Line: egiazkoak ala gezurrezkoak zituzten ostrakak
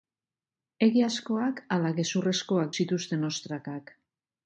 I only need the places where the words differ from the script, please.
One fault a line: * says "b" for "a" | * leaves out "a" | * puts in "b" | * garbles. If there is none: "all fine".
all fine